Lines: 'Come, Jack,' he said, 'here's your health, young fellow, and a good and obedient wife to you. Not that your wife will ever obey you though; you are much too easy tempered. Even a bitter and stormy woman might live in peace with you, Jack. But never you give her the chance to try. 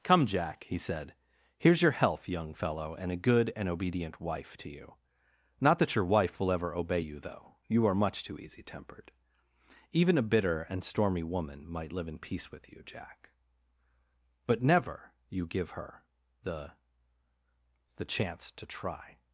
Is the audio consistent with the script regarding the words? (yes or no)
no